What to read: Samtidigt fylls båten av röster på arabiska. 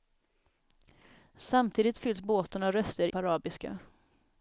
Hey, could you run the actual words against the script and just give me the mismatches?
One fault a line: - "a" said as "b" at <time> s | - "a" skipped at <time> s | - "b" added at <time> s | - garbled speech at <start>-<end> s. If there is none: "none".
none